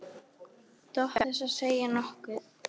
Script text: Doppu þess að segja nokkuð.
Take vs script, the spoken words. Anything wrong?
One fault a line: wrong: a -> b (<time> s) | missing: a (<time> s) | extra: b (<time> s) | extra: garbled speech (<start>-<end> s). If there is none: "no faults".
no faults